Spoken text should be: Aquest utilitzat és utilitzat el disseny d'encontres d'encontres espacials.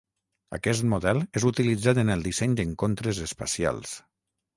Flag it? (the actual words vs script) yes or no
yes